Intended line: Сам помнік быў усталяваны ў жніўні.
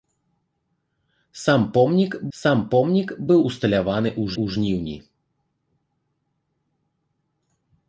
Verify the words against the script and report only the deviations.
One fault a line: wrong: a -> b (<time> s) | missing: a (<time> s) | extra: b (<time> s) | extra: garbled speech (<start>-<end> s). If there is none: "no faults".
extra: сам помнік (2.4 s)
extra: ў (4.4 s)